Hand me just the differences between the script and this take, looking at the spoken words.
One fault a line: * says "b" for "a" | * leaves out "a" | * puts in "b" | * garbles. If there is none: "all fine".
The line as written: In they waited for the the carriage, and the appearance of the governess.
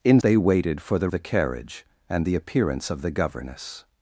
all fine